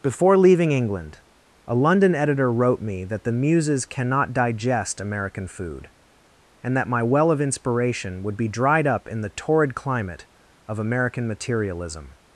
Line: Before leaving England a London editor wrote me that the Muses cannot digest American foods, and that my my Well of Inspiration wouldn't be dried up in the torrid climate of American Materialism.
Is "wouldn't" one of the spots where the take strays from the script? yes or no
yes